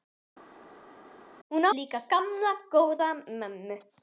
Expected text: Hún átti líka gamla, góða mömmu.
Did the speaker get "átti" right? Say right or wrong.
wrong